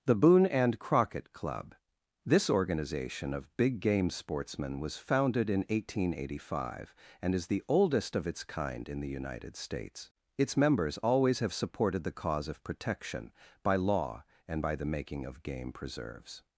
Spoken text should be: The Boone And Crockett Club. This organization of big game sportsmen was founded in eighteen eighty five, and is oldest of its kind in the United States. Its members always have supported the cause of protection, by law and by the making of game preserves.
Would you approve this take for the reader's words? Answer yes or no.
no